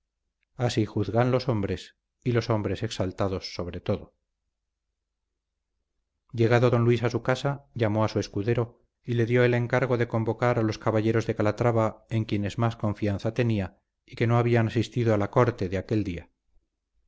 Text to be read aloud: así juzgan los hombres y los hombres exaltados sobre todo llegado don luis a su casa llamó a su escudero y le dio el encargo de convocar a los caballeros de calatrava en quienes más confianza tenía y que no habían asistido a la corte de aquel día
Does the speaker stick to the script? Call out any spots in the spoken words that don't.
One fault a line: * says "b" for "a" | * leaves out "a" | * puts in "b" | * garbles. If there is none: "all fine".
all fine